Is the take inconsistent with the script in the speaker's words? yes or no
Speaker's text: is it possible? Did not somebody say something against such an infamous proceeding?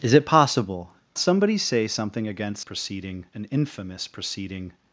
yes